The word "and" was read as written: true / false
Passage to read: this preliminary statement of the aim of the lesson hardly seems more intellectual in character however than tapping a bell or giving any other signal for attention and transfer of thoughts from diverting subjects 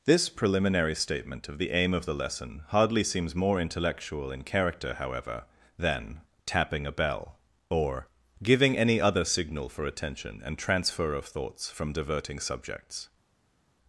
true